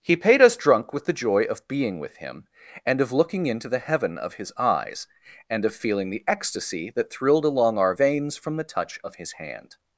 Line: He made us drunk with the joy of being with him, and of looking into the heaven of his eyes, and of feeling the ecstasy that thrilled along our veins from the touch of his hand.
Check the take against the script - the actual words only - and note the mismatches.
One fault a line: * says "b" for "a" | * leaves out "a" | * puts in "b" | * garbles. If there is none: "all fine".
* says "paid" for "made"